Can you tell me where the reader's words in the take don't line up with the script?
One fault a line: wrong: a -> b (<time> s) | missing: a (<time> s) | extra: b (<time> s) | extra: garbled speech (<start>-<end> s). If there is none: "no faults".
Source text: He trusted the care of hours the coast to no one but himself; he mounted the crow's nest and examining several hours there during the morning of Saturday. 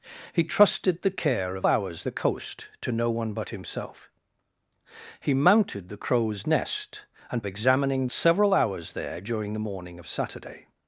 no faults